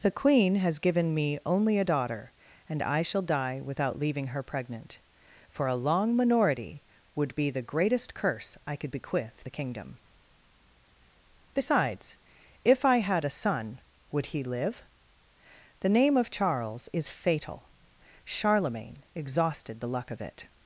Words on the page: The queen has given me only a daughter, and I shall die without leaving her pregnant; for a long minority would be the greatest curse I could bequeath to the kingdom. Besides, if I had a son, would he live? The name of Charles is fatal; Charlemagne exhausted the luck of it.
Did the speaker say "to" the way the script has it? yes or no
no